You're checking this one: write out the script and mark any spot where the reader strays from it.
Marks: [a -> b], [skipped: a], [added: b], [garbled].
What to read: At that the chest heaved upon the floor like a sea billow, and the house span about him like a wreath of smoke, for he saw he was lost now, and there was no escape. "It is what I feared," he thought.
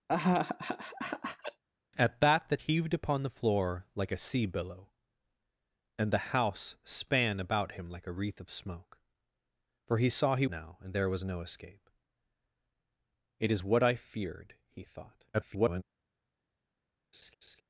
At that the [skipped: chest] heaved upon the floor like a sea billow, and the house span about him like a wreath of smoke, for he saw he [skipped: was lost] now, and there was no escape. "It is what I feared," he thought. [garbled]